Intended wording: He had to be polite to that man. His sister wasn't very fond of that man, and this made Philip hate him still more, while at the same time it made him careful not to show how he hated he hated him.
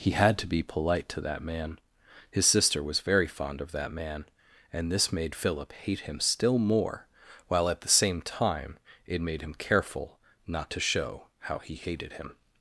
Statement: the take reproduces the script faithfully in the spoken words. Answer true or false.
false